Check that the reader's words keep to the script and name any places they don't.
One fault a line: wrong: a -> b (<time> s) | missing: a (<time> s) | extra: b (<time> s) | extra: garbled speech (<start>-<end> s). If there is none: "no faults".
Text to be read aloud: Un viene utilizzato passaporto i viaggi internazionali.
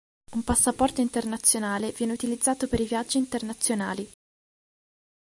extra: passaporto internazionale (0.4 s)
wrong: passaporto -> per (2.7 s)